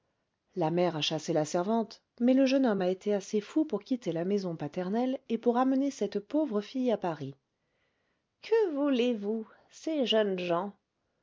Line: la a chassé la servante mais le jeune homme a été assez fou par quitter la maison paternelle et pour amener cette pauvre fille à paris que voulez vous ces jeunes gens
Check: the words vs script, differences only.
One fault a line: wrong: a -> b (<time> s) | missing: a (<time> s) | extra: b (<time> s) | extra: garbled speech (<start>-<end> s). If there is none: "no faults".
extra: mère (0.7 s)
wrong: par -> pour (3.7 s)